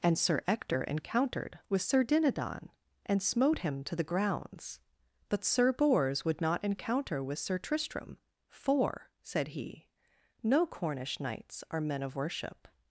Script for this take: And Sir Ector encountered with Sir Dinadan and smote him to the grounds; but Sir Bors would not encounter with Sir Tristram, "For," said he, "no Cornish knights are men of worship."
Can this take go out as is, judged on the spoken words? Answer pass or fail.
pass